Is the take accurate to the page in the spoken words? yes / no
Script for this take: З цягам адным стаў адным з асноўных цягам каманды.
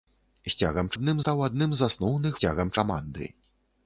yes